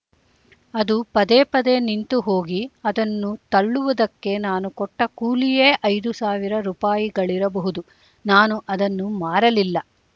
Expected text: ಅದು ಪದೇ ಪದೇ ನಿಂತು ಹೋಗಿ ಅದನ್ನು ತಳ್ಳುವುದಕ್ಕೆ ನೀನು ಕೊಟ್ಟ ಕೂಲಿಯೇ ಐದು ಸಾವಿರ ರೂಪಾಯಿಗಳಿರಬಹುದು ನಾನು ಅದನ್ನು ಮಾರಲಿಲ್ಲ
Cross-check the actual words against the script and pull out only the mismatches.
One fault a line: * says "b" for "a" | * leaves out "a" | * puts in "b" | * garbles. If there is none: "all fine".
* says "ನಾನು" for "ನೀನು"